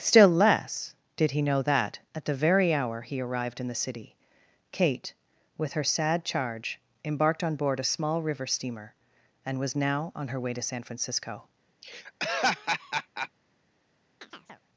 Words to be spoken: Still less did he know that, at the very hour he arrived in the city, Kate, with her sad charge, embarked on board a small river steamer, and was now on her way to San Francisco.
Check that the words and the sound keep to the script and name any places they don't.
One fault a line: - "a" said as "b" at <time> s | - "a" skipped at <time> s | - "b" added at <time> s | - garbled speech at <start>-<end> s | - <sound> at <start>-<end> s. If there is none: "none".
- laugh at 11.8-13.3 s
- chirp at 14.2-14.6 s